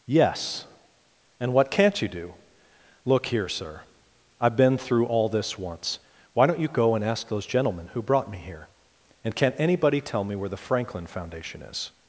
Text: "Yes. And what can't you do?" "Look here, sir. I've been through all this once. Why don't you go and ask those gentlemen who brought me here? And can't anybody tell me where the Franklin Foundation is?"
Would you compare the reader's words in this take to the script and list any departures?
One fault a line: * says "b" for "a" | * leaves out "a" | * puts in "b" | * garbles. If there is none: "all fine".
all fine